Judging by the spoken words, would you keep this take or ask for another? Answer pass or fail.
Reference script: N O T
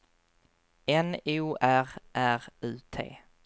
fail